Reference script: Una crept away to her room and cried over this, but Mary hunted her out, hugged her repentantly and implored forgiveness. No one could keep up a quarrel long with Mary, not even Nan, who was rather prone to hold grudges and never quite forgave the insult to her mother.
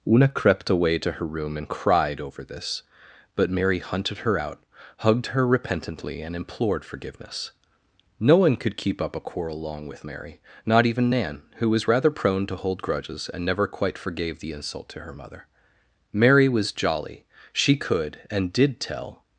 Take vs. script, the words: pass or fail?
fail